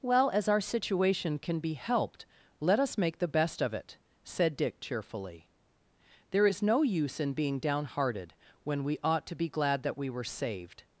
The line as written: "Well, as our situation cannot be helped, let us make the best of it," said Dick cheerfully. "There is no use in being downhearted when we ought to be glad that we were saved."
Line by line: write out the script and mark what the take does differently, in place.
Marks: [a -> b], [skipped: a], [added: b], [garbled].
"Well, as our situation [cannot -> can] be helped, let us make the best of it," said Dick cheerfully. "There is no use in being downhearted when we ought to be glad that we were saved."